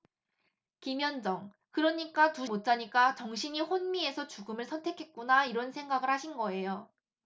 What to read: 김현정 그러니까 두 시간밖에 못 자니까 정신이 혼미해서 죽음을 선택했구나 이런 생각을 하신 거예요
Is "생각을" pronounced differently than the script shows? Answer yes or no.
no